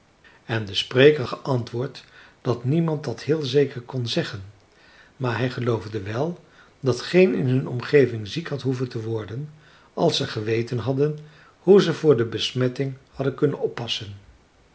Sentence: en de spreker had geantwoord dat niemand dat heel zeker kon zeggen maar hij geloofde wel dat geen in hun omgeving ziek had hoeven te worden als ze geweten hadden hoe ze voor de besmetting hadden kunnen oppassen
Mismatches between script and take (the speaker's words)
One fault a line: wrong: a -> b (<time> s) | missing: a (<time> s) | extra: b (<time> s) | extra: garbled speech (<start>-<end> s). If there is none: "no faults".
missing: had (1.2 s)